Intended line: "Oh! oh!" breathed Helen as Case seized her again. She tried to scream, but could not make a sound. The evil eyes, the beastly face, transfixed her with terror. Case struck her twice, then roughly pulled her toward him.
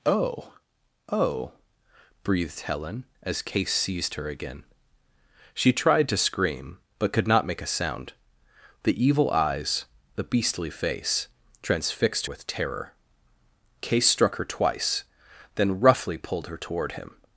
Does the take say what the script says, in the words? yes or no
no